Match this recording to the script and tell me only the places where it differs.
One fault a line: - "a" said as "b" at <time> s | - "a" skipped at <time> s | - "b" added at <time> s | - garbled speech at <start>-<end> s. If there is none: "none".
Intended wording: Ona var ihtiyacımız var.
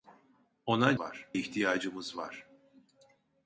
none